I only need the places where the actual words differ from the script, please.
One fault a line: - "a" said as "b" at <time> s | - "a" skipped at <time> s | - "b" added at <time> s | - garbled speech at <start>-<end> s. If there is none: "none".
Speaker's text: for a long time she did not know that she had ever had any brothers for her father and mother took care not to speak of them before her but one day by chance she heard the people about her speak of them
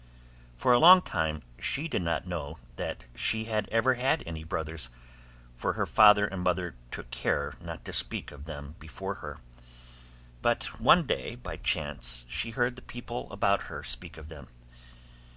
none